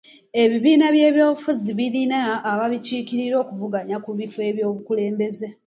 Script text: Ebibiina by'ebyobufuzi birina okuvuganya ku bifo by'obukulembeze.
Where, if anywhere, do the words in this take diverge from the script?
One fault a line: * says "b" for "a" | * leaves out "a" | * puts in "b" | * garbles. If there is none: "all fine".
* puts in "ababikiikirira"